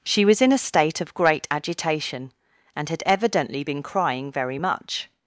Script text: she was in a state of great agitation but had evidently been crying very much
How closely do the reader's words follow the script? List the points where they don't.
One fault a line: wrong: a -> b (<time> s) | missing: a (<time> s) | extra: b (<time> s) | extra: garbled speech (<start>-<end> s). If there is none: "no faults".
wrong: but -> and (2.8 s)